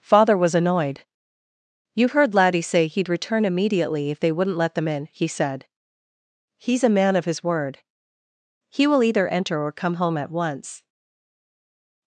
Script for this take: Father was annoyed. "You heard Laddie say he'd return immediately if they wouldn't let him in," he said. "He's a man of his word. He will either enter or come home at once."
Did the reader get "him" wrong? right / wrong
wrong